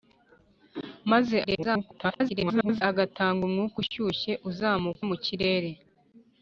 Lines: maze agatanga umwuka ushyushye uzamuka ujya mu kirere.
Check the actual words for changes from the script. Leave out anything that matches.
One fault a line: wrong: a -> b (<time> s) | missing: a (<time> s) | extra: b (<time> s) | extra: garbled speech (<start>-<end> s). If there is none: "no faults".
extra: garbled speech (1.4-2.8 s)
missing: ujya (5.0 s)